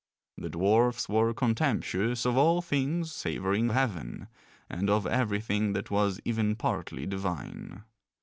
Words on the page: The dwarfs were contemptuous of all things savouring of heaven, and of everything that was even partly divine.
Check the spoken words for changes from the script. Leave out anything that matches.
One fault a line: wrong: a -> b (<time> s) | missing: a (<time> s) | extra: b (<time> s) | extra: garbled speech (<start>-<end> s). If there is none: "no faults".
missing: of (3.7 s)